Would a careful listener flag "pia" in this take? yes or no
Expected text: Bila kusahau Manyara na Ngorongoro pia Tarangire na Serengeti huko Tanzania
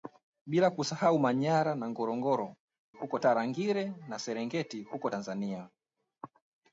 yes